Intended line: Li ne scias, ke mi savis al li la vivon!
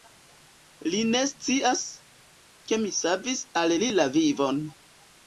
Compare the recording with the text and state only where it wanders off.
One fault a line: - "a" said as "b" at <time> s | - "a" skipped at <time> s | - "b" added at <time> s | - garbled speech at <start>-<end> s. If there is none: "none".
none